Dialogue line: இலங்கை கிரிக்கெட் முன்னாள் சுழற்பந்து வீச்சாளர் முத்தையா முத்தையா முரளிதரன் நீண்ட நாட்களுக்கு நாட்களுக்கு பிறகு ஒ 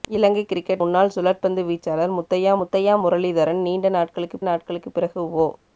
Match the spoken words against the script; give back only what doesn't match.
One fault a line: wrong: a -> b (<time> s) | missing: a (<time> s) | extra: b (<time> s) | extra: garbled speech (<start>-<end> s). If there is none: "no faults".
no faults